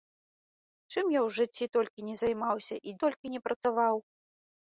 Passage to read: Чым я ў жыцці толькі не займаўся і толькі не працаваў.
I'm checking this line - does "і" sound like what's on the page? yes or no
yes